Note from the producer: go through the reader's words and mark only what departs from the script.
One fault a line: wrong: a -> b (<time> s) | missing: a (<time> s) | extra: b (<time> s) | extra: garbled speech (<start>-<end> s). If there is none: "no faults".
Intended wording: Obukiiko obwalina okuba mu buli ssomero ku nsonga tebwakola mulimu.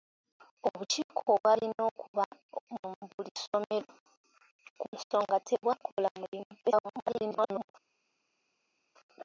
extra: garbled speech (6.6-7.7 s)